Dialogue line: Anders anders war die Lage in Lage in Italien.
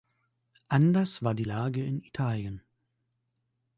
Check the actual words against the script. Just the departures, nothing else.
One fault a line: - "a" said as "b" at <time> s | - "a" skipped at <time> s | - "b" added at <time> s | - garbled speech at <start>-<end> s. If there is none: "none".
- "anders" skipped at 1.2 s
- "Lage in" skipped at 2.0 s